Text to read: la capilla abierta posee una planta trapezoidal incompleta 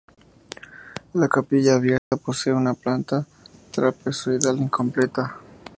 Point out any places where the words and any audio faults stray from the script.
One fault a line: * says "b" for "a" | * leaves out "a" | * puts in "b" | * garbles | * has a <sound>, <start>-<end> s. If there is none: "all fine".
* has a dropout, 2.0-2.1 s